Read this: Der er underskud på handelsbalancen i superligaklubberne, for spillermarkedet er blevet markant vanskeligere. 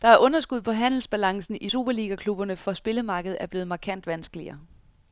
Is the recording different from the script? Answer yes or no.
no